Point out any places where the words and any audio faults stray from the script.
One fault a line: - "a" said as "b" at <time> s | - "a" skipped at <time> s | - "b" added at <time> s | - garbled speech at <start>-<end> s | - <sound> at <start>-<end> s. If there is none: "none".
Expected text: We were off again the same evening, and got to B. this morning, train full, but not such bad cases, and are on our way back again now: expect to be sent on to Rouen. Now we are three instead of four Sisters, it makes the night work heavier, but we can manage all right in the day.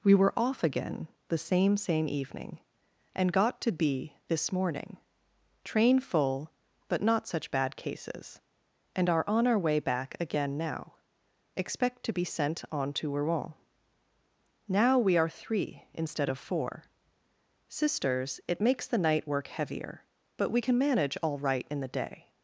- "same" added at 1.8 s